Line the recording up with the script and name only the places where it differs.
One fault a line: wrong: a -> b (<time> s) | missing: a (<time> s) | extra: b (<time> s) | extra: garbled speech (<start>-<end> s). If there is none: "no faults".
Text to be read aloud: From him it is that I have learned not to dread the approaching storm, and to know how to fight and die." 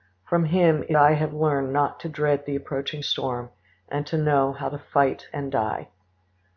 missing: is that (1.0 s)